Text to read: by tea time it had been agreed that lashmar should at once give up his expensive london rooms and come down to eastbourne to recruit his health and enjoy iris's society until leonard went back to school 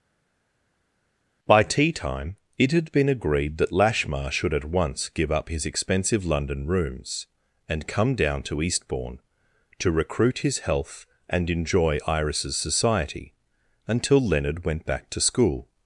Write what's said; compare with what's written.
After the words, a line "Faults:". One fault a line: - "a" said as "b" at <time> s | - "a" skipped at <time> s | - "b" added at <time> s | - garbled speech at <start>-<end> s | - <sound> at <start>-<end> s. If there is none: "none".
by tea time it had been agreed that lashmar should at once give up his expensive london rooms and come down to eastbourne to recruit his health and enjoy iris's society until leonard went back to school
Faults:
none